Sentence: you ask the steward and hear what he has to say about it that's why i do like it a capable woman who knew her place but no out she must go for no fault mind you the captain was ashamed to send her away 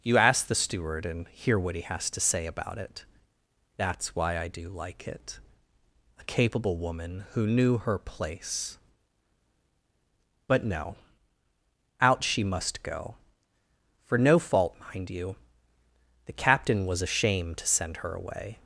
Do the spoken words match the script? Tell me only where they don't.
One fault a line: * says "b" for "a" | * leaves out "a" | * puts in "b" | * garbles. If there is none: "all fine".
all fine